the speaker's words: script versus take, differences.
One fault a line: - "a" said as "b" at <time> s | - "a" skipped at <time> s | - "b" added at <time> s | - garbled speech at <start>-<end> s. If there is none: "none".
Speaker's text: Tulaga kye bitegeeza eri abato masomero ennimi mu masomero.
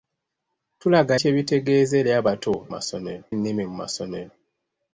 none